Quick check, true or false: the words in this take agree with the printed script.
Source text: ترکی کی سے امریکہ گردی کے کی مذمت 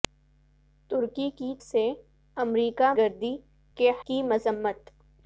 true